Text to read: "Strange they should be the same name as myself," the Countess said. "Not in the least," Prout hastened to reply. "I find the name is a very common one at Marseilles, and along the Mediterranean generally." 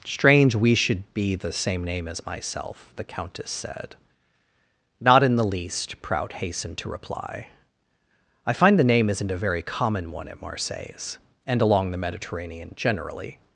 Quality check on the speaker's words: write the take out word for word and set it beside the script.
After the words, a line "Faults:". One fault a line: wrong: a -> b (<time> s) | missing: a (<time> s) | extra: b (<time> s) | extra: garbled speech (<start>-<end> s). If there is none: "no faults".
"Strange we should be the same name as myself," the Countess said. "Not in the least," Prout hastened to reply. "I find the name isn't a very common one at Marseilles, and along the Mediterranean generally."
Faults:
wrong: they -> we (0.6 s)
wrong: is -> isn't (9.1 s)